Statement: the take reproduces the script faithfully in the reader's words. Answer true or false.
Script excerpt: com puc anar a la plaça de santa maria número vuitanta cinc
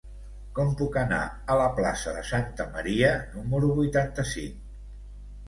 true